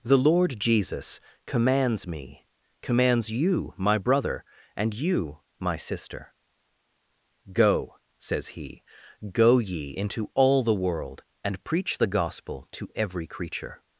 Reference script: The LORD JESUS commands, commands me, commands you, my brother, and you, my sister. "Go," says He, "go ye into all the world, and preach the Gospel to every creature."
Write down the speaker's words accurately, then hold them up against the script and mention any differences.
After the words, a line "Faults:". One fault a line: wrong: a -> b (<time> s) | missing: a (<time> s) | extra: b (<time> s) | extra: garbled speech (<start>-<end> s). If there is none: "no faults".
The LORD JESUS commands, me, commands you, my brother, and you, my sister. "Go," says He, "go ye into all the world, and preach the Gospel to every creature."
Faults:
missing: commands (2.1 s)